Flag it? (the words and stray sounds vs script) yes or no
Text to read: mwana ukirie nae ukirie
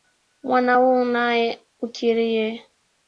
yes